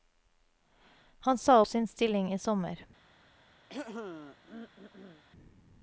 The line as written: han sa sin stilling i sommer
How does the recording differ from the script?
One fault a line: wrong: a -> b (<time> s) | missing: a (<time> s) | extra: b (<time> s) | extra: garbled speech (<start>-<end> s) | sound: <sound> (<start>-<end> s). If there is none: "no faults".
sound: throat clearing (3.7-5.2 s)